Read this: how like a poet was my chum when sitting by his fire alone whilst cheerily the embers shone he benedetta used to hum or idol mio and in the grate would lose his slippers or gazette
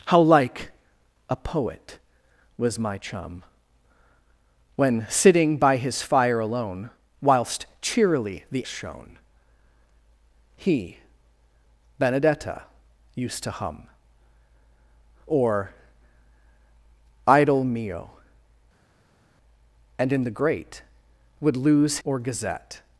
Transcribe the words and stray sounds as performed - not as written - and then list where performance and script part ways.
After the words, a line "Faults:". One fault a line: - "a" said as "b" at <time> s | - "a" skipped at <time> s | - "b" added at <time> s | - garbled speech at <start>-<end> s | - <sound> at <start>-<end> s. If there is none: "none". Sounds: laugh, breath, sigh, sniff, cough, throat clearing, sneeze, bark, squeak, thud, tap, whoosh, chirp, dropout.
how like a poet was my chum when sitting by his fire alone whilst cheerily the shone he benedetta used to hum or idol mio and in the grate would lose or gazette
Faults:
- "embers" skipped at 8.6 s
- "his slippers" skipped at 22.0 s